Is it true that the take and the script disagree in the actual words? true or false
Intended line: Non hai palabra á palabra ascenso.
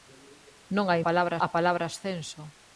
false